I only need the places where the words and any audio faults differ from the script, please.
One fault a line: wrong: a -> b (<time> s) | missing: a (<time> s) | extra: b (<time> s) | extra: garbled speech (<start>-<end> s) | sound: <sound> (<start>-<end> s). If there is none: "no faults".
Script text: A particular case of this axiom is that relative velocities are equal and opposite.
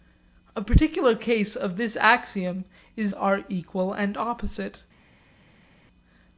missing: that relative velocities (3.1 s)